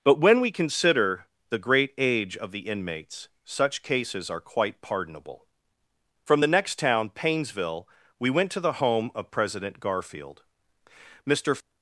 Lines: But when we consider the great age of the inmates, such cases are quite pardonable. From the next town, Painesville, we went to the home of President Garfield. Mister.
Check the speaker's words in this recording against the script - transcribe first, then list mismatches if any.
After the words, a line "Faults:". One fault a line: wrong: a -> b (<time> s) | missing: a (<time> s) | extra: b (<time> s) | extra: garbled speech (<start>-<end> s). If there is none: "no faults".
But when we consider the great age of the inmates, such cases are quite pardonable. From the next town, Painesville, we went to the home of President Garfield. Mister.
Faults:
no faults